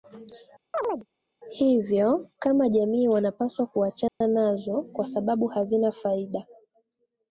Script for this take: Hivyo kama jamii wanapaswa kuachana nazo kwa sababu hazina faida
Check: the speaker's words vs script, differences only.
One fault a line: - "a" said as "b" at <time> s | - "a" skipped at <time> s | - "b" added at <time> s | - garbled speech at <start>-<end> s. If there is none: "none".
none